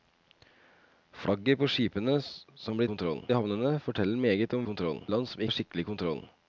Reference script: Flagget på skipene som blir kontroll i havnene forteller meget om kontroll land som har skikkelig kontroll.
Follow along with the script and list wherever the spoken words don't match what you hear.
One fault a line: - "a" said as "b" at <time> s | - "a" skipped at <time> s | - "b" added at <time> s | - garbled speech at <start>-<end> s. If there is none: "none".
none